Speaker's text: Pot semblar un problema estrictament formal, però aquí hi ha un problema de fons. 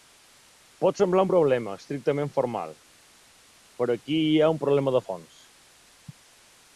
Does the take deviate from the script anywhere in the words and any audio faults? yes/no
no